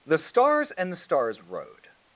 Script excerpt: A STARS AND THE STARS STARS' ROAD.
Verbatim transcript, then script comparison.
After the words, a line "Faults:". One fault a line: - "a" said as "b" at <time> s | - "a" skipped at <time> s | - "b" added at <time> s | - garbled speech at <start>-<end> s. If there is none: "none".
THE STARS AND THE STARS' ROAD.
Faults:
- "A" said as "THE" at 0.0 s
- "STARS" skipped at 1.4 s